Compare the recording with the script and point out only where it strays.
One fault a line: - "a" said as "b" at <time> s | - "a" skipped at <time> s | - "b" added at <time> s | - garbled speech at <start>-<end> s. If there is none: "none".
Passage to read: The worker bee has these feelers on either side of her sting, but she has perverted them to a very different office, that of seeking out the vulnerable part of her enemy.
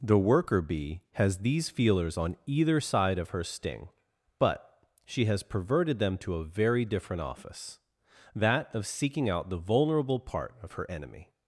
none